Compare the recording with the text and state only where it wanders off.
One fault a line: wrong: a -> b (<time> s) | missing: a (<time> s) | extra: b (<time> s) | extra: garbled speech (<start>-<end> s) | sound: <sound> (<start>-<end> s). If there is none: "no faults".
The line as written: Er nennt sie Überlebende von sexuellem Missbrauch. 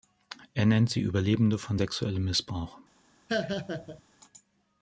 sound: laugh (3.3-4.0 s)